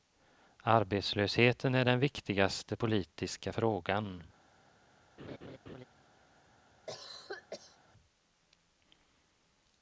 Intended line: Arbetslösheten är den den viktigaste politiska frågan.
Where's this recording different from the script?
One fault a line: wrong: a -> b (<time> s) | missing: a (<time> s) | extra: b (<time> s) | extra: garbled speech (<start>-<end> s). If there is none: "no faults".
missing: den (2.0 s)